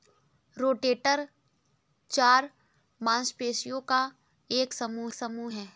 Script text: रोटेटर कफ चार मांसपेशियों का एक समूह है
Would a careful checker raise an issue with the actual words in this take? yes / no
yes